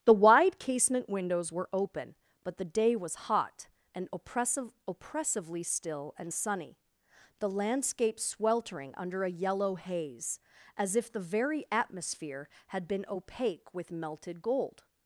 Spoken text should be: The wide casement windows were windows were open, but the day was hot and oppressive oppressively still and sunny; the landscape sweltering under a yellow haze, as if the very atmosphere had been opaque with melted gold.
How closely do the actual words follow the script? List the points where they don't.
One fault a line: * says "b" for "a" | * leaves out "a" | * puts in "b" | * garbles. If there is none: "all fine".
* leaves out "windows were"